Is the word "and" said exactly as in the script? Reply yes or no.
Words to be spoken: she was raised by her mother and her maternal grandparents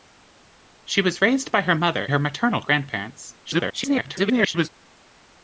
no